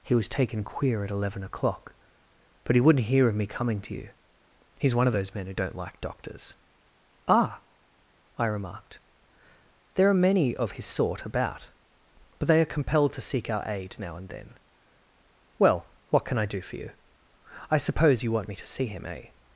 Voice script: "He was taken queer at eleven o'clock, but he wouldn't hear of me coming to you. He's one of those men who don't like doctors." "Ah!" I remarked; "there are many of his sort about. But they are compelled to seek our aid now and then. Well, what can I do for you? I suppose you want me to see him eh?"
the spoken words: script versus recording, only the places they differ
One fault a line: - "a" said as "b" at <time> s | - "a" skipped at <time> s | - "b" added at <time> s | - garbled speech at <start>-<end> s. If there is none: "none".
none